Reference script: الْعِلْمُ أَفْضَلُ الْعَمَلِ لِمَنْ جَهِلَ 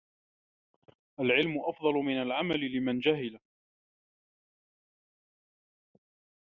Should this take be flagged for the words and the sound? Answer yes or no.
yes